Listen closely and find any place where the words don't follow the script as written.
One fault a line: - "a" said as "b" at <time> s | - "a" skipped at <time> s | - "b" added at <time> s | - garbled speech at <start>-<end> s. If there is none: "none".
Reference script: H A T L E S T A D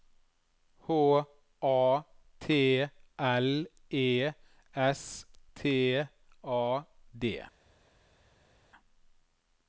none